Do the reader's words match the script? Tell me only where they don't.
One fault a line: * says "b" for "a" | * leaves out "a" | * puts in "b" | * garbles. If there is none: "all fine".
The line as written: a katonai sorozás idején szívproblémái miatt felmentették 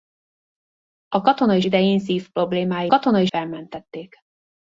* leaves out "sorozás"
* says "katonai" for "miatt"